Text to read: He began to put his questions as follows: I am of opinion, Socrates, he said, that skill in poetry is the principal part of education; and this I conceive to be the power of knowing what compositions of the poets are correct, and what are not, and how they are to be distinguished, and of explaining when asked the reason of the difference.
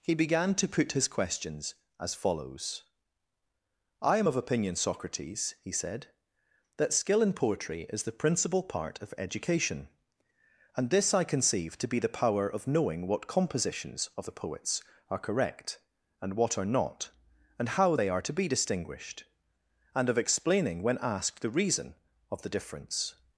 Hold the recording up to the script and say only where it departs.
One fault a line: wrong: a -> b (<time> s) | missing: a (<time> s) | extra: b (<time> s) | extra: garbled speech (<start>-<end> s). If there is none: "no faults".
no faults